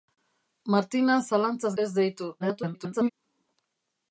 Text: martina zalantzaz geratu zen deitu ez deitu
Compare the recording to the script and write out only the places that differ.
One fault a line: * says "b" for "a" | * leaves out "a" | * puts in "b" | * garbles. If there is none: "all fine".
* leaves out "geratu zen deitu"
* garbles